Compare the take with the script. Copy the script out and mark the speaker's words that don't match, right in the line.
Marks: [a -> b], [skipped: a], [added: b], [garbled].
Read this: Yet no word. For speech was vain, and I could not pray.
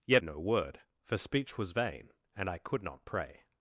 Yet no word. For speech was vain, and I could not pray.